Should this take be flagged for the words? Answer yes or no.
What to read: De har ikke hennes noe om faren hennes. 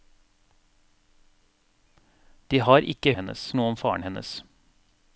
no